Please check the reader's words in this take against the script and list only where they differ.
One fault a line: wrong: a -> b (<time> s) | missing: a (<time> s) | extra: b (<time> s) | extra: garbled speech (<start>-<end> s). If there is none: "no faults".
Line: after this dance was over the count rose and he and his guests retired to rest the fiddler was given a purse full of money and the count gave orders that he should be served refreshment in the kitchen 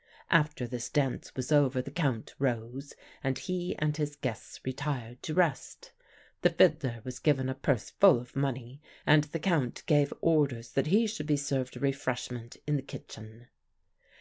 no faults